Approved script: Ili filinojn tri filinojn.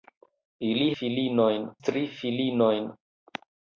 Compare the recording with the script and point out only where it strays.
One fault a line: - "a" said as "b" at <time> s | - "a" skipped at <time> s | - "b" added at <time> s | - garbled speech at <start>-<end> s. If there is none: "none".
none